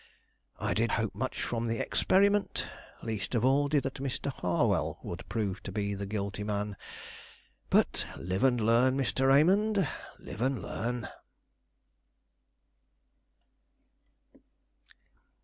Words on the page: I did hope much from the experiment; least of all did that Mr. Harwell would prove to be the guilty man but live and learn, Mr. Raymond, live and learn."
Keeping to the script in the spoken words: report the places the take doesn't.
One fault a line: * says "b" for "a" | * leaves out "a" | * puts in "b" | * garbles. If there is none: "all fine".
all fine